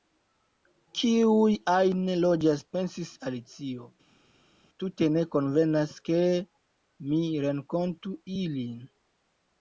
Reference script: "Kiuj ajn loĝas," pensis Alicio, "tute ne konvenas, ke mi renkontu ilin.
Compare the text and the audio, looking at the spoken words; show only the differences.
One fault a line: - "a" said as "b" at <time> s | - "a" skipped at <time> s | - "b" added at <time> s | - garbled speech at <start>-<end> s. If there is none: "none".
none